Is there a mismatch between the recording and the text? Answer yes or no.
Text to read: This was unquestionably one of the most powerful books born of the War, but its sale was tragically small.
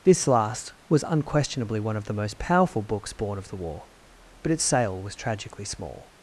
yes